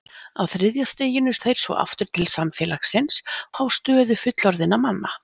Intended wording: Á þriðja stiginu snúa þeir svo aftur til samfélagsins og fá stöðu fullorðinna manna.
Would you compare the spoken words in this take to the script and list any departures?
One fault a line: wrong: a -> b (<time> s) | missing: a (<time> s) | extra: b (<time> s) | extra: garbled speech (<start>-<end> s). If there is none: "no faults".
missing: snúa (1.3 s)
missing: og (3.2 s)